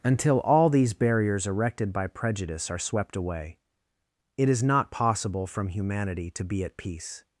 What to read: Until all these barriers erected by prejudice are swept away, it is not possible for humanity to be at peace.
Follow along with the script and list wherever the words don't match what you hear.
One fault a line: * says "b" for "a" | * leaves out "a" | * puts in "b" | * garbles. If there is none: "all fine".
* says "from" for "for"